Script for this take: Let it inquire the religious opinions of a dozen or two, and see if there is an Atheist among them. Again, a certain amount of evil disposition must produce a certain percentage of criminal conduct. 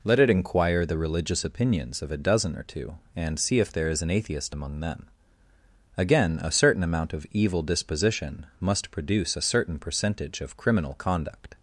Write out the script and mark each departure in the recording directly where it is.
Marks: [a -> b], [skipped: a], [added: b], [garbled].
Let it inquire the religious opinions of a dozen or two, and see if there is an Atheist among them. Again, a certain amount of evil disposition must produce a certain percentage of criminal conduct.